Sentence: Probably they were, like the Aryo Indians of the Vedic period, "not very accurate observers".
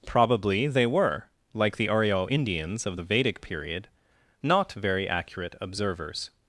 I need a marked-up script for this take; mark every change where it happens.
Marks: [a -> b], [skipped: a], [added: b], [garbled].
Probably they were, like the Aryo Indians of the Vedic period, "not very accurate observers".